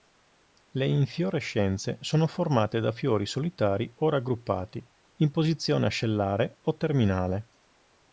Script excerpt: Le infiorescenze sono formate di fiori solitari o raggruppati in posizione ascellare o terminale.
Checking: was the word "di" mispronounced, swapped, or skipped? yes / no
yes